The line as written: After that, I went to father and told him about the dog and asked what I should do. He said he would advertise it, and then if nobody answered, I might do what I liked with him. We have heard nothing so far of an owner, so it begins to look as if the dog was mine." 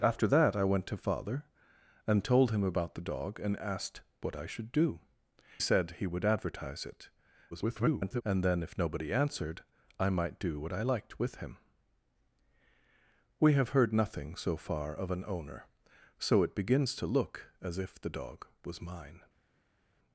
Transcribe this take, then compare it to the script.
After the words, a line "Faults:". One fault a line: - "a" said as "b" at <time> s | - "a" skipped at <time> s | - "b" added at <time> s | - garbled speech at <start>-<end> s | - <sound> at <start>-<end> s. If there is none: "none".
After that, I went to father and told him about the dog and asked what I should do. Said he would advertise it, [garbled] and then if nobody answered, I might do what I liked with him. We have heard nothing so far of an owner, so it begins to look as if the dog was mine."
Faults:
- "He" skipped at 5.0 s
- garbled speech at 7.5-8.2 s